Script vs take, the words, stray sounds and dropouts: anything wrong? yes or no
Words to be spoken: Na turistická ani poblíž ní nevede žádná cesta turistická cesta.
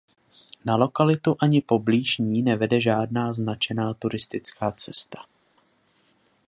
yes